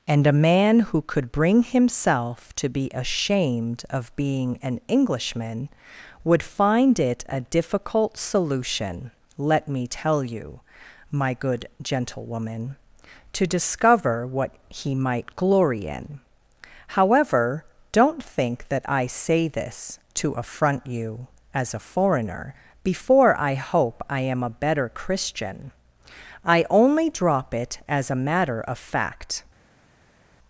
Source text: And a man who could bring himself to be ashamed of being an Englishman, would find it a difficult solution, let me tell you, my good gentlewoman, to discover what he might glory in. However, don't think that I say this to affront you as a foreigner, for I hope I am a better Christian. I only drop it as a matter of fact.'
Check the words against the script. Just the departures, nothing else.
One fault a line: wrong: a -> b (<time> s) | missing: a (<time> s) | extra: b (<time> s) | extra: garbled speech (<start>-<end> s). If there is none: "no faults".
wrong: for -> before (22.8 s)